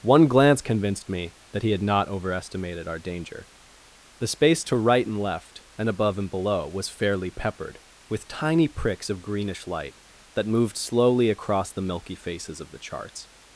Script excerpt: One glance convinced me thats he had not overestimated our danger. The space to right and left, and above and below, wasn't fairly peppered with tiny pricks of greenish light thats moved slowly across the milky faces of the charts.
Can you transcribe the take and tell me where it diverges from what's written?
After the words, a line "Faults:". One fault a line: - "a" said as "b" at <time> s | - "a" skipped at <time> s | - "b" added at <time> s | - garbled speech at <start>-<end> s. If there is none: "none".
One glance convinced me that he had not overestimated our danger. The space to right and left, and above and below, was fairly peppered with tiny pricks of greenish light that moved slowly across the milky faces of the charts.
Faults:
- "thats" said as "that" at 1.5 s
- "wasn't" said as "was" at 6.7 s
- "thats" said as "that" at 10.3 s